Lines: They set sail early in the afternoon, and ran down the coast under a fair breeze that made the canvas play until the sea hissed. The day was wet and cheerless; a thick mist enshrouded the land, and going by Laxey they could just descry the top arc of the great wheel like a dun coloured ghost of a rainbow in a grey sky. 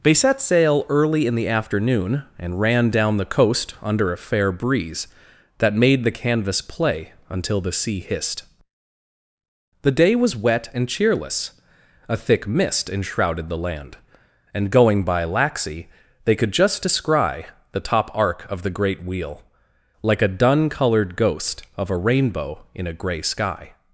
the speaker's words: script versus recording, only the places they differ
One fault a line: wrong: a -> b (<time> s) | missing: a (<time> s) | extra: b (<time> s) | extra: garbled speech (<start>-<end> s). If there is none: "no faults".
no faults